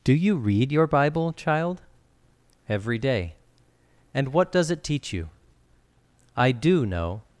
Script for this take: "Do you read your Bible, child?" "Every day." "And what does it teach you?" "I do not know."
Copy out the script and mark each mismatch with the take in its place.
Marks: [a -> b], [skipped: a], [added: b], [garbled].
"Do you read your Bible, child?" "Every day." "And what does it teach you?" "I do [skipped: not] know."